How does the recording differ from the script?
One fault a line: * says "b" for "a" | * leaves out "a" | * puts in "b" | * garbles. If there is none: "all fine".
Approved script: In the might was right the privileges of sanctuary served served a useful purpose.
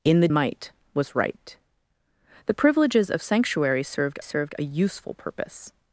all fine